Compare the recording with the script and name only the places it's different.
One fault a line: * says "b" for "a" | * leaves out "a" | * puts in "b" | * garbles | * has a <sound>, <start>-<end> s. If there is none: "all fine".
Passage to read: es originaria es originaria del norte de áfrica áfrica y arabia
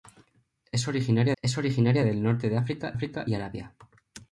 all fine